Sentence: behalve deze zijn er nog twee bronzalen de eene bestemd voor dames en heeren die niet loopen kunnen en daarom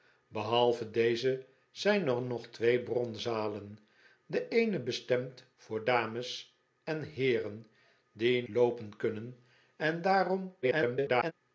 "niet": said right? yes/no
no